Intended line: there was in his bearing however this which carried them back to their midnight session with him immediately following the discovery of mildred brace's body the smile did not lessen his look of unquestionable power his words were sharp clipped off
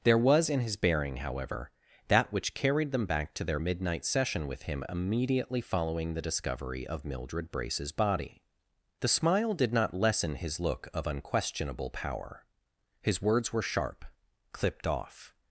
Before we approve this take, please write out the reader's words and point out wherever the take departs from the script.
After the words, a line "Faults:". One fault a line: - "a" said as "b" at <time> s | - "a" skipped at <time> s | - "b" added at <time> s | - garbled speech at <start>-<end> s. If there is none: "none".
there was in his bearing however that which carried them back to their midnight session with him immediately following the discovery of mildred brace's body the smile did not lessen his look of unquestionable power his words were sharp clipped off
Faults:
- "this" said as "that" at 2.1 s